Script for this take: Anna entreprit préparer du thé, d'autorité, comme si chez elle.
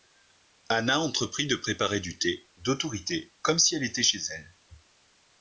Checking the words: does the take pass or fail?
fail